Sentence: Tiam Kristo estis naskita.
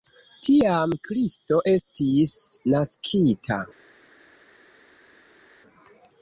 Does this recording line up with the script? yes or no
yes